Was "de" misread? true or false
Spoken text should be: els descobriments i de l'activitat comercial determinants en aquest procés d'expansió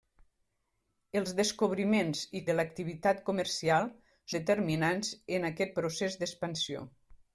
false